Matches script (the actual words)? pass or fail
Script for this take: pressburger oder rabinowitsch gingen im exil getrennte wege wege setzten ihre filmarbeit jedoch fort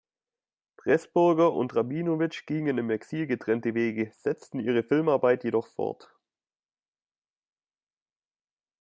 fail